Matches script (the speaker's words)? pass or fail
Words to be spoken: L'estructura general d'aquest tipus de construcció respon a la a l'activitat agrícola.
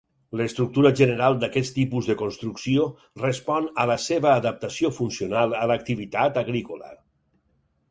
fail